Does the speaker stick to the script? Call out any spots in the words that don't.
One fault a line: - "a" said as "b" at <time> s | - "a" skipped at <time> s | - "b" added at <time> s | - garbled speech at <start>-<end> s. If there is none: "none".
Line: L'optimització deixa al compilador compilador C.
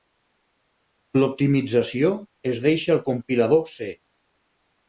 - "es" added at 2.5 s
- "compilador" skipped at 3.6 s